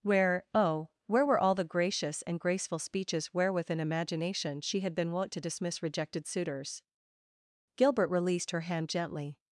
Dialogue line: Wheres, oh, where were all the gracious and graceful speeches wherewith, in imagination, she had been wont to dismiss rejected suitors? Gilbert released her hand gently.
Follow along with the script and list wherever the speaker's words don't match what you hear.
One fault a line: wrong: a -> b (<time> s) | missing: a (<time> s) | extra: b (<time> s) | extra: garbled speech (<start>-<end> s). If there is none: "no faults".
wrong: Wheres -> Where (0.0 s)